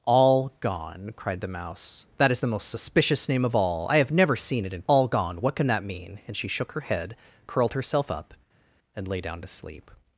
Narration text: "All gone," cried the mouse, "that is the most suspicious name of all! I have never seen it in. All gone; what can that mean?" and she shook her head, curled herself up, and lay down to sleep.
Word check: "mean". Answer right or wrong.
right